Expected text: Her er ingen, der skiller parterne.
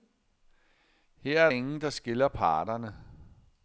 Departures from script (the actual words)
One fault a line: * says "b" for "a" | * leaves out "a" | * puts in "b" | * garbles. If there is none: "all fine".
all fine